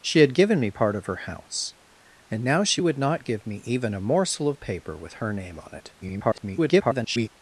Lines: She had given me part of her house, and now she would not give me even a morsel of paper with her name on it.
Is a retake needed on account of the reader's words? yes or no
yes